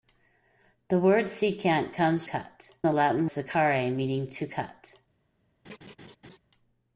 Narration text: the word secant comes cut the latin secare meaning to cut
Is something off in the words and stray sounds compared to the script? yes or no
yes